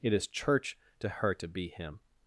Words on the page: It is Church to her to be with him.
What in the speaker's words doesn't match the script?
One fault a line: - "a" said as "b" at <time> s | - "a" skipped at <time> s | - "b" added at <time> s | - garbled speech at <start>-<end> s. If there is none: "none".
- "with" skipped at 1.7 s